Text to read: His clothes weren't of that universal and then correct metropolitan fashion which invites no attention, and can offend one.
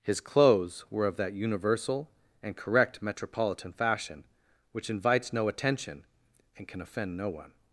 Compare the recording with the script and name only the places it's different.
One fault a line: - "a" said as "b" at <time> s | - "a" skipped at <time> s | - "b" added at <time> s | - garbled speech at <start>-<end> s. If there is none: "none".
- "weren't" said as "were" at 0.9 s
- "then" skipped at 2.5 s
- "no" added at 7.2 s